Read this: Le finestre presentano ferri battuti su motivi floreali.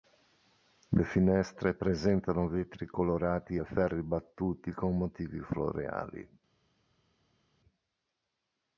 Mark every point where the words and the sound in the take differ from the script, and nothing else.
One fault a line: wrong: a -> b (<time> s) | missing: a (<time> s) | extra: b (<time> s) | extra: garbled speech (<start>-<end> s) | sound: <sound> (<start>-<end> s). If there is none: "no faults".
extra: vetri colorati e (2.5 s)
wrong: su -> con (4.7 s)